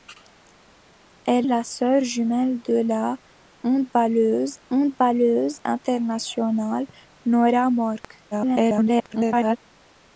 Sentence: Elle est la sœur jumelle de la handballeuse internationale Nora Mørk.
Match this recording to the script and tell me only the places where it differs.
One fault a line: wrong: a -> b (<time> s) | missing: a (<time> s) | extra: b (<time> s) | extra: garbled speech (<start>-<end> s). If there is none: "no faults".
missing: est (1.5 s)
extra: handballeuse (4.7 s)
extra: garbled speech (8.3-9.6 s)